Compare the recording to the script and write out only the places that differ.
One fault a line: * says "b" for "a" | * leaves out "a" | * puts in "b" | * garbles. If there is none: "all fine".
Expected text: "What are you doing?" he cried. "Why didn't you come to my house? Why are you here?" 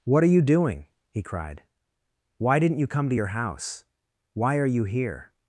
* says "your" for "my"